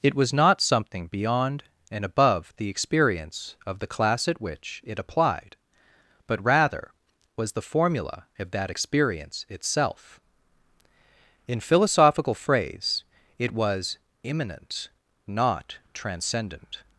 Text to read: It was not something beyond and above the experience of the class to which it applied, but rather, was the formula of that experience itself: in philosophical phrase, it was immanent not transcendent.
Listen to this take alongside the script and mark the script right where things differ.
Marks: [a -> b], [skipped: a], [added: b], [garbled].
It was not something beyond and above the experience of the class [to -> at] which it applied, but rather, was the formula of that experience itself: in philosophical phrase, it was immanent not transcendent.